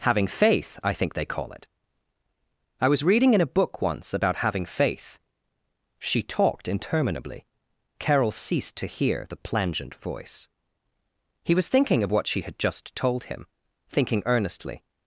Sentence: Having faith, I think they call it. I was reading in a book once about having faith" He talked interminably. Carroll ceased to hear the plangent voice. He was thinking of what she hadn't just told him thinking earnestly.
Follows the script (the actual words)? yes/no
no